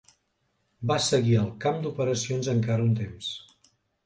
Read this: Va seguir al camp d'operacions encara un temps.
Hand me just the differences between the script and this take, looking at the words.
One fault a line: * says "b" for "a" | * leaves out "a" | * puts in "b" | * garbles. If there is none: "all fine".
all fine